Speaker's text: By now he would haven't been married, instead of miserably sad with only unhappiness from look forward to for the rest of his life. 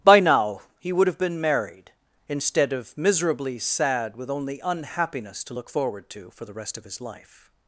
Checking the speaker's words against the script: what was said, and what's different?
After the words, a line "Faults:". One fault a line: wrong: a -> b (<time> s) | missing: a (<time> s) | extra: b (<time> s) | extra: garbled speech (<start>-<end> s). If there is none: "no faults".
By now he would have been married, instead of miserably sad with only unhappiness to look forward to for the rest of his life.
Faults:
wrong: haven't -> have (1.1 s)
wrong: from -> to (5.4 s)